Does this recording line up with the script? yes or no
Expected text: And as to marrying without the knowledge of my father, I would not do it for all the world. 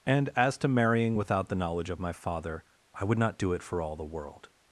yes